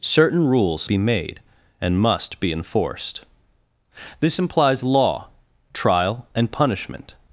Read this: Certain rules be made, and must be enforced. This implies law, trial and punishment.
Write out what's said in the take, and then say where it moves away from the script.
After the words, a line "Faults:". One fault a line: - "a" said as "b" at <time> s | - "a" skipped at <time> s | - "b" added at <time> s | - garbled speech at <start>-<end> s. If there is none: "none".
Certain rules be made, and must be enforced. This implies law, trial and punishment.
Faults:
none